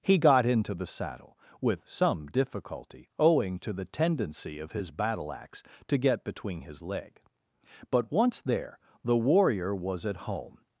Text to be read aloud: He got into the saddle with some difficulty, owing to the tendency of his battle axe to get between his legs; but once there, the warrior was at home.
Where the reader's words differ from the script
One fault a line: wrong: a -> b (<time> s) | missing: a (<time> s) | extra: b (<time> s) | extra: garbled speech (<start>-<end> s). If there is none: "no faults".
wrong: legs -> leg (6.8 s)